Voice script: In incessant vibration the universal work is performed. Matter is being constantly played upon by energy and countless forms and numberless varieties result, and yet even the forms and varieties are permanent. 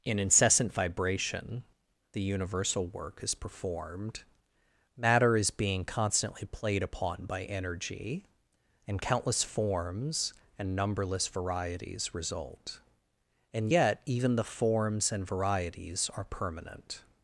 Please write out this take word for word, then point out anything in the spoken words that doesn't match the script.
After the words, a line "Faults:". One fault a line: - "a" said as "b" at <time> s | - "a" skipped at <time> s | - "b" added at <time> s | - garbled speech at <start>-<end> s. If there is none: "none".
In incessant vibration the universal work is performed. Matter is being constantly played upon by energy and countless forms and numberless varieties result, and yet even the forms and varieties are permanent.
Faults:
none